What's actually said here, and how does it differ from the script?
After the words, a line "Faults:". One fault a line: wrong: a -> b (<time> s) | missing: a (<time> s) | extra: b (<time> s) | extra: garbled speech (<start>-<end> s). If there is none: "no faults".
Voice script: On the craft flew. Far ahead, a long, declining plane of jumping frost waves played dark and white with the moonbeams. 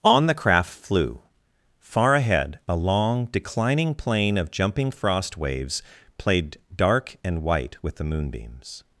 On the craft flew. Far ahead, a long, declining plane of jumping frost waves played dark and white with the moonbeams.
Faults:
no faults